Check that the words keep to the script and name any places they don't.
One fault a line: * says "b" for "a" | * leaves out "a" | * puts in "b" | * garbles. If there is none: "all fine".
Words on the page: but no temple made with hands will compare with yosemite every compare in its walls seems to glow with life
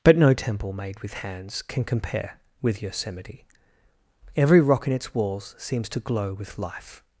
* says "can" for "will"
* says "rock" for "compare"